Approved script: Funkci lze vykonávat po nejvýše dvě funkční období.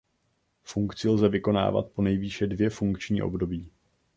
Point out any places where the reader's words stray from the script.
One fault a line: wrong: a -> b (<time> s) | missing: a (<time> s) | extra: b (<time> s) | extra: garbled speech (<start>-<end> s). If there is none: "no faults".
no faults